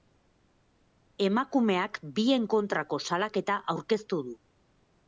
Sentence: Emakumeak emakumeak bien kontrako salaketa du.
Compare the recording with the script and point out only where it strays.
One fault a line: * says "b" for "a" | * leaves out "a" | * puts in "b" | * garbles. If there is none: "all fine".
* leaves out "emakumeak"
* puts in "aurkeztu"